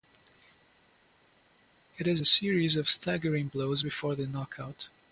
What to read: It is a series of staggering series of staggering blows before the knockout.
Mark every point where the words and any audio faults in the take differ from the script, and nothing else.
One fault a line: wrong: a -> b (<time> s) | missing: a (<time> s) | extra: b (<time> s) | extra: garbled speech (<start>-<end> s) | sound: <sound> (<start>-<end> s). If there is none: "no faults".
missing: series of staggering (3.5 s)